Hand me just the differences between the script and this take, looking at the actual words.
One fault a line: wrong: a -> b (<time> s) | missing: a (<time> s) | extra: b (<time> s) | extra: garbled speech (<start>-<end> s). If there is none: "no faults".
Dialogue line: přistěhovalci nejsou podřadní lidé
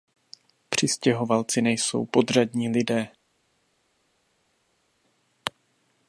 no faults